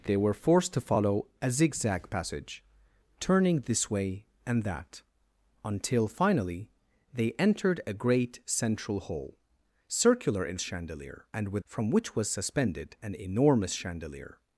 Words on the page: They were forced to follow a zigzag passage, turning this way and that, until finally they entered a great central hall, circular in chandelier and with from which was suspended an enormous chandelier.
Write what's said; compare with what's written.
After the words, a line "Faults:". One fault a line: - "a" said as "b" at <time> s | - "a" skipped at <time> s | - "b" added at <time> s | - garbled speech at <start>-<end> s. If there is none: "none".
They were forced to follow a zigzag passage, turning this way and that, until finally they entered a great central hall, circular in chandelier and with from which was suspended an enormous chandelier.
Faults:
none